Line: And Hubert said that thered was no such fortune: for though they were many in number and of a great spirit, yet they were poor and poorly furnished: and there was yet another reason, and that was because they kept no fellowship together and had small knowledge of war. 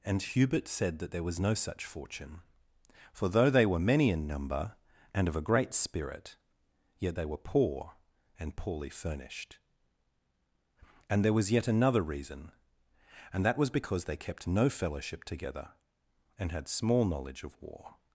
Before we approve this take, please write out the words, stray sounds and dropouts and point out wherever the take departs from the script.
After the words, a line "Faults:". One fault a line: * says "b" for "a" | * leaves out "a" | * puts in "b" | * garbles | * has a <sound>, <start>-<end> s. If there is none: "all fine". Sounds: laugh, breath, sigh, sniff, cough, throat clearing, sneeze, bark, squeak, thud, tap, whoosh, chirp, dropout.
And Hubert said that there was no such fortune: for though they were many in number and of a great spirit, yet they were poor and poorly furnished: and there was yet another reason, and that was because they kept no fellowship together and had small knowledge of war.
Faults:
* says "there" for "thered"